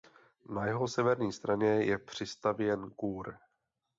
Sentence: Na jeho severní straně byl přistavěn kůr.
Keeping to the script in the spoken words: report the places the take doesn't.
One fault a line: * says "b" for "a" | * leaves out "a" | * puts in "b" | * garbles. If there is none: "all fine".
* says "je" for "byl"